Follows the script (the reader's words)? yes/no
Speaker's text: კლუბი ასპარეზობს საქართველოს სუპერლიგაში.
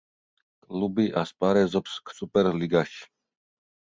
no